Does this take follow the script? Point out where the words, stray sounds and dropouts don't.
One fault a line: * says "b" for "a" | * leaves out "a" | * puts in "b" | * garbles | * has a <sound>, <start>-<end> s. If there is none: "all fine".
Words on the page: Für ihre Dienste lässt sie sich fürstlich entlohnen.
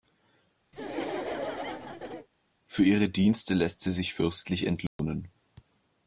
* has a laugh, 0.7-2.3 s
* has a dropout, 4.9-5.0 s